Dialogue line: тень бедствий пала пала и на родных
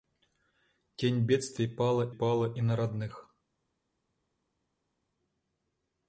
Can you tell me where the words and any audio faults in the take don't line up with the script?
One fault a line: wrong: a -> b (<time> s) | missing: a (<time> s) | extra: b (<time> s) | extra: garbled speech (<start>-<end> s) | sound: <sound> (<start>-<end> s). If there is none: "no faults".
no faults